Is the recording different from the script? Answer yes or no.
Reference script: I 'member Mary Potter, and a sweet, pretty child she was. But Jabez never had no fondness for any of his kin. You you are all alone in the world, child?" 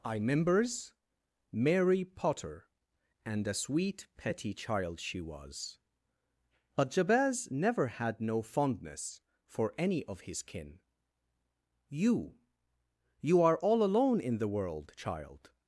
yes